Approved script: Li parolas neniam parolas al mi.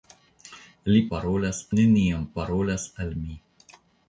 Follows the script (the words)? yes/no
yes